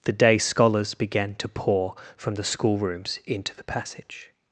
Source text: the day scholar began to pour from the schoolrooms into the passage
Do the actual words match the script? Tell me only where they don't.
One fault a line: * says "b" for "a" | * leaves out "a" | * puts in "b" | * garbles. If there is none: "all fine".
* says "scholars" for "scholar"